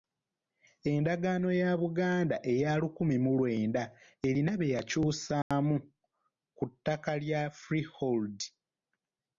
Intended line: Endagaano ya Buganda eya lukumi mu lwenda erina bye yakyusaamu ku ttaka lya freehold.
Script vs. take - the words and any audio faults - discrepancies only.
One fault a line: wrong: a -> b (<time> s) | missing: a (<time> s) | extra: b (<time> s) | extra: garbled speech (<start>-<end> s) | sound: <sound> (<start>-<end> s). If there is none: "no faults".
sound: dropout (5.4-5.5 s)